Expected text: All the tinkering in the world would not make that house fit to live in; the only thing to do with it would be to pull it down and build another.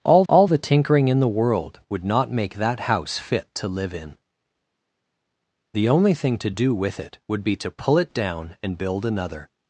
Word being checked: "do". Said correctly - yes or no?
yes